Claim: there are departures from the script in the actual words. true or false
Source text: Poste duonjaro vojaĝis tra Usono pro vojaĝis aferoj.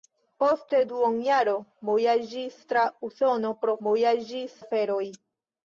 false